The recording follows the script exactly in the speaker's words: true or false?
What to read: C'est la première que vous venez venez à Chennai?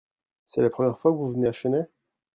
false